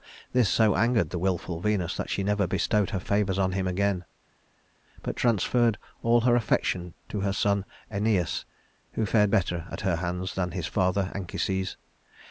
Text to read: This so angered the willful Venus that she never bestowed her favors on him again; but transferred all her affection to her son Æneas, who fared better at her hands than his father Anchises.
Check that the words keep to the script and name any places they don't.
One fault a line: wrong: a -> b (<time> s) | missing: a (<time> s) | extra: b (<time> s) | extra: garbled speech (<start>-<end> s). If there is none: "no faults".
no faults